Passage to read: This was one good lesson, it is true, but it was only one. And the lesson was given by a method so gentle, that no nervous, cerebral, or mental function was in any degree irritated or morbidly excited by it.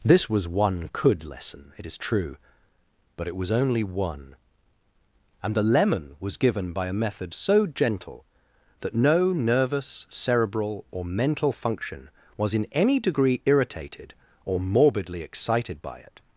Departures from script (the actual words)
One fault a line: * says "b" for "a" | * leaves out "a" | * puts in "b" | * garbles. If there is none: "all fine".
* says "could" for "good"
* says "lemon" for "lesson"